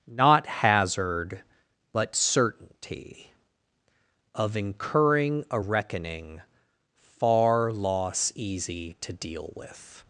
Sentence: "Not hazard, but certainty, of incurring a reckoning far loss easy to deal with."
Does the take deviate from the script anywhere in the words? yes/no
no